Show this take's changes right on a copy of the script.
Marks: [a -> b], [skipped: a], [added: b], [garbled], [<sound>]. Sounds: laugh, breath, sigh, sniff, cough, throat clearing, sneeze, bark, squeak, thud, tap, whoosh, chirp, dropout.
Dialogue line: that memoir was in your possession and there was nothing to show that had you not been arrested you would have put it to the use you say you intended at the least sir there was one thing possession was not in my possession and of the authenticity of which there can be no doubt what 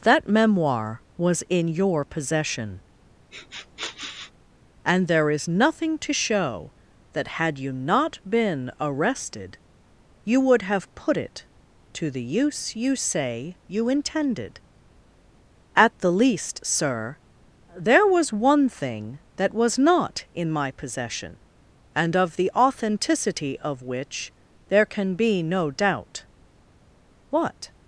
that memoir was in your possession [sniff] and there [was -> is] nothing to show that had you not been arrested you would have put it to the use you say you intended at the least sir there was one thing [possession -> that] was not in my possession and of the authenticity of which there can be no doubt what